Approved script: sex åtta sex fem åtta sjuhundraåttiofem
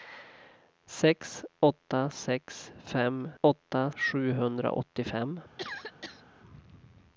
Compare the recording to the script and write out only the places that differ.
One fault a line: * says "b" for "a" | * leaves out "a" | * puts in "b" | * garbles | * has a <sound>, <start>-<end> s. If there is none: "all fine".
* has a cough, 5.6-6.2 s